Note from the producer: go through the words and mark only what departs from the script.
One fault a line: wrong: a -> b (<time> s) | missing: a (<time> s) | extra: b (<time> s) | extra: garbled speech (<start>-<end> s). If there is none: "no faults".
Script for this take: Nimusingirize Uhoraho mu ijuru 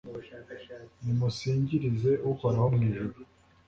no faults